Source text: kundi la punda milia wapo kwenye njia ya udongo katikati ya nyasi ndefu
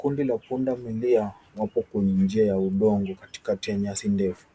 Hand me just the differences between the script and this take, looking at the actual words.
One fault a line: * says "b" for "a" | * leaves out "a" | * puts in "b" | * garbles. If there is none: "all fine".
all fine